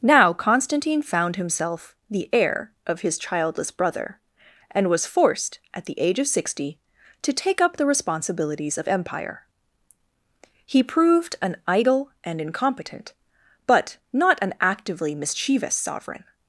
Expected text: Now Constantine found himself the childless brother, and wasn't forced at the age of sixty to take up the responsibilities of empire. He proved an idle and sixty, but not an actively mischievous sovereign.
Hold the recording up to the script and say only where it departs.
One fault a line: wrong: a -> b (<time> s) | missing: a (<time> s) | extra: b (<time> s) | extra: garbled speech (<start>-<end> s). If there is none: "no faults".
extra: heir of his (2.3 s)
wrong: wasn't -> was (4.9 s)
wrong: sixty -> incompetent (12.4 s)